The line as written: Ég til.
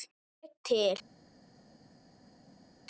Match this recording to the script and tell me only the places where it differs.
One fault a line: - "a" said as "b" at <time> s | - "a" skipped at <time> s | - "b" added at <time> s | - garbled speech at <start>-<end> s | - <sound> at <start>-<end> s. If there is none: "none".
none